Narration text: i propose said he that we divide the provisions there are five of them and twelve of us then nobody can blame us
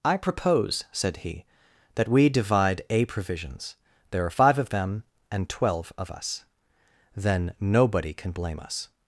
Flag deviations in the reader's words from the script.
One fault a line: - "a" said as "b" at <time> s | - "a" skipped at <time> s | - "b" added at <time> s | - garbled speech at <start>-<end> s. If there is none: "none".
- "the" said as "a" at 2.9 s